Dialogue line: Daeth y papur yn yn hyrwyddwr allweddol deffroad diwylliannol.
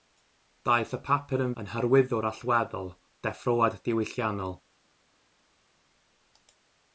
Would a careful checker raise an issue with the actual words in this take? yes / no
no